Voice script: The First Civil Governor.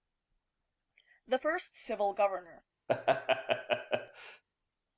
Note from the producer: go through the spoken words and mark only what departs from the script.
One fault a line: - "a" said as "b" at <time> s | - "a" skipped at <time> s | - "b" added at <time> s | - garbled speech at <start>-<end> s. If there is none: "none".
none